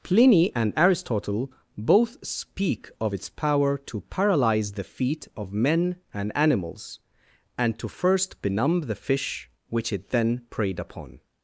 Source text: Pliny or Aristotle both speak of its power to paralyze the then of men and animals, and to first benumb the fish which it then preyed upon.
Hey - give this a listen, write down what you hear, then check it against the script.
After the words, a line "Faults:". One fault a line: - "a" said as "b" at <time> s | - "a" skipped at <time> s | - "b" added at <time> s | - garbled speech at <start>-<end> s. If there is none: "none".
Pliny and Aristotle both speak of its power to paralyze the feet of men and animals, and to first benumb the fish which it then preyed upon.
Faults:
- "or" said as "and" at 0.6 s
- "then" said as "feet" at 4.8 s